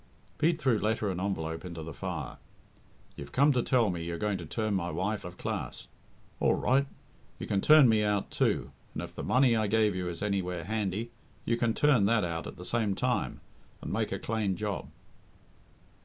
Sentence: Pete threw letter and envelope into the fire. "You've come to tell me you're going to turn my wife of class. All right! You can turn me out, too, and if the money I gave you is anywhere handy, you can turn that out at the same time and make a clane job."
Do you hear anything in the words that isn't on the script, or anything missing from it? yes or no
no